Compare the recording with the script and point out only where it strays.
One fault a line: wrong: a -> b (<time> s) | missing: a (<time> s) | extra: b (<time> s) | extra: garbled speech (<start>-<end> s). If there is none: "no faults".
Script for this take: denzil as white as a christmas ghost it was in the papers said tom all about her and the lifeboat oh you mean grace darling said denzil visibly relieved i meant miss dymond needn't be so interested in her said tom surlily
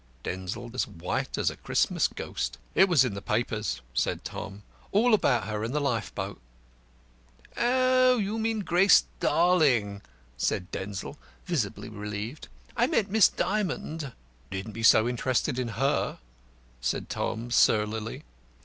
no faults